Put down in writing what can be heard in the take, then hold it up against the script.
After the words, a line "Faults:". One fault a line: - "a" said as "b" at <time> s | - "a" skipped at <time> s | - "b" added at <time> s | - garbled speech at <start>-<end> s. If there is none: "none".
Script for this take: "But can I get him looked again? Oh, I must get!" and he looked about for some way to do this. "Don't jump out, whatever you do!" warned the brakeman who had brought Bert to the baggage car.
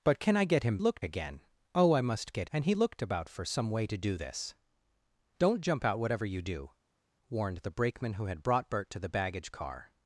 "But can I get him looked again? Oh, I must get!" and he looked about for some way to do this. "Don't jump out, whatever you do!" warned the brakeman who had brought Bert to the baggage car.
Faults:
none